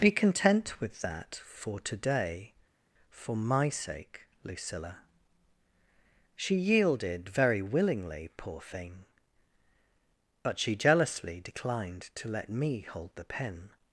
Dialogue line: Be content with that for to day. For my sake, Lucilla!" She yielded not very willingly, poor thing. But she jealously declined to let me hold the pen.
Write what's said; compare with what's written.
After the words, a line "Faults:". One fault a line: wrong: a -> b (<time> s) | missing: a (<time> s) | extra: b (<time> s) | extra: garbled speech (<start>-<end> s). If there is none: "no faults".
Be content with that for to day. For my sake, Lucilla!" She yielded very willingly, poor thing. But she jealously declined to let me hold the pen.
Faults:
missing: not (7.3 s)